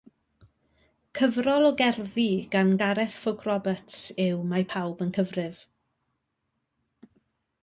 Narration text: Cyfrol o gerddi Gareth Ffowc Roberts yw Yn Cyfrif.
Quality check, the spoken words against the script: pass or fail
fail